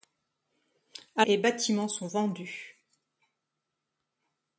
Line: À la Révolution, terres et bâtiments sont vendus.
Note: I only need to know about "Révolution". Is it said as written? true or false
false